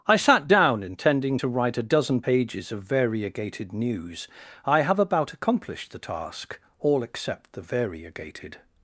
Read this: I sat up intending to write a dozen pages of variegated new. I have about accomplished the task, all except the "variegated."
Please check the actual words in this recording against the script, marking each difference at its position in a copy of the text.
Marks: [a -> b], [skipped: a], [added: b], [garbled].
I sat [up -> down] intending to write a dozen pages of variegated [new. -> news] I have about accomplished the task, all except the "variegated."